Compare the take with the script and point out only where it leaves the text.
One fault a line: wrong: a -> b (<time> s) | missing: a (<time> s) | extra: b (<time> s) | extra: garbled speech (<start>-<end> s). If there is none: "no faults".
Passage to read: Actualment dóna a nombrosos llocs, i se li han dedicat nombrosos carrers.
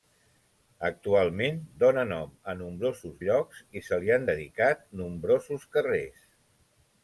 extra: nom (2.1 s)